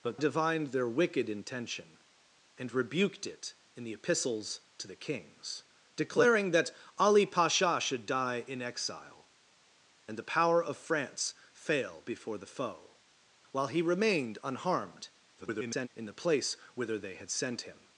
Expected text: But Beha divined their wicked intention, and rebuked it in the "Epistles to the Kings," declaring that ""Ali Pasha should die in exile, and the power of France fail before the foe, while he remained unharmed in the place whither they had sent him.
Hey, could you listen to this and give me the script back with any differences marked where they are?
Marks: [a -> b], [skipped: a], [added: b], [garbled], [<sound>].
But [skipped: Beha] divined their wicked intention, and rebuked it in the "Epistles to the Kings," declaring that ""Ali Pasha should die in exile, and the power of France fail before the foe, while he remained unharmed [garbled] in the place whither they had sent him.